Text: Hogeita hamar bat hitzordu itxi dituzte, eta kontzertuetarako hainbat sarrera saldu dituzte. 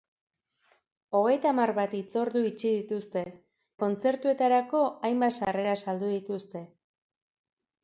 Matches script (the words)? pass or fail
fail